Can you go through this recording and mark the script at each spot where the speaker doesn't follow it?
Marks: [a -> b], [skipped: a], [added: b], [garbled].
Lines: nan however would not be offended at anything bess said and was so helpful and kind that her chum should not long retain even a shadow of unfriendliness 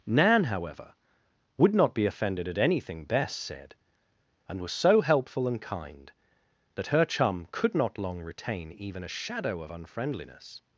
nan however would not be offended at anything bess said and was so helpful and kind that her chum [should -> could] not long retain even a shadow of unfriendliness